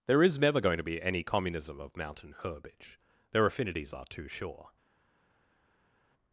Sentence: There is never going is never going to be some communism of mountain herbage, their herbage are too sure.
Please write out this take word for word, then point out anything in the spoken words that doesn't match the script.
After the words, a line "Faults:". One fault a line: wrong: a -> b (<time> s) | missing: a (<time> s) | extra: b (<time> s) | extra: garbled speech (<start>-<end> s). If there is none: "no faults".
There is never going to be any communism of mountain herbage, their affinities are too sure.
Faults:
missing: is never going (0.8 s)
wrong: some -> any (1.0 s)
wrong: herbage -> affinities (3.5 s)